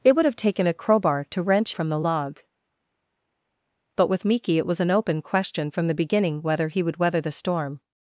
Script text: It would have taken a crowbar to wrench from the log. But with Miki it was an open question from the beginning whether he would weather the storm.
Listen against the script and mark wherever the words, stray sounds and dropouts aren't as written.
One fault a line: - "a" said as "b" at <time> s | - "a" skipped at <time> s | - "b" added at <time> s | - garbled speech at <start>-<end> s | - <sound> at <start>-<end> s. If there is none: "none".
none